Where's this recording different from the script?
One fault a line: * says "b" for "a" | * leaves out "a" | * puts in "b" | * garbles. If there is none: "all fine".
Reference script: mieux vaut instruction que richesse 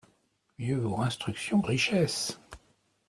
* leaves out "que"